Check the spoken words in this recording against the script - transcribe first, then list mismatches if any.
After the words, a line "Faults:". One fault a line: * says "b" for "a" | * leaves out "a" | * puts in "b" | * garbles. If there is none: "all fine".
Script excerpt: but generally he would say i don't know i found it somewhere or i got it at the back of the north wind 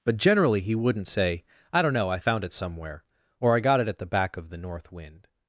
but generally he wouldn't say i don't know i found it somewhere or i got it at the back of the north wind
Faults:
* says "wouldn't" for "would"